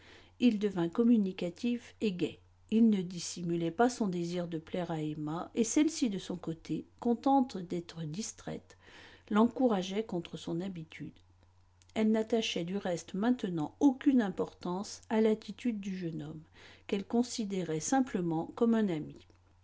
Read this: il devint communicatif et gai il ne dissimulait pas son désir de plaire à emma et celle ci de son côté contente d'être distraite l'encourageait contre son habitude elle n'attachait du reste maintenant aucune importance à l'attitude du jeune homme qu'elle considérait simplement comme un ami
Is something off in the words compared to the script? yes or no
no